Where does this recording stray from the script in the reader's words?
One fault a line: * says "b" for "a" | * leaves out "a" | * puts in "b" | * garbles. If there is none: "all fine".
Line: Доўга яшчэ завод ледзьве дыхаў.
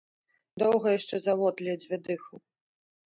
all fine